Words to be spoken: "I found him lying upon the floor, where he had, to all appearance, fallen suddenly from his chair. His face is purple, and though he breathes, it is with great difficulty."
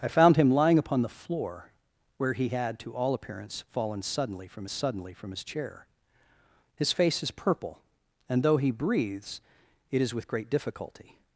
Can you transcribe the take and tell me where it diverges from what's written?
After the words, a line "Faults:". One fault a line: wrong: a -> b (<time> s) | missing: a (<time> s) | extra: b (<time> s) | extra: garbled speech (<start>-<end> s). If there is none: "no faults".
"I found him lying upon the floor, where he had, to all appearance, fallen suddenly from suddenly from his chair. His face is purple, and though he breathes, it is with great difficulty."
Faults:
extra: suddenly from (4.7 s)